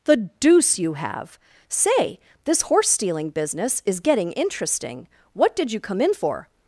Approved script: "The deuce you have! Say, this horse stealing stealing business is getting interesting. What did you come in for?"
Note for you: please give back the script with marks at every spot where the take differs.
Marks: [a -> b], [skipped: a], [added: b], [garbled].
"The deuce you have! Say, this horse stealing [skipped: stealing] business is getting interesting. What did you come in for?"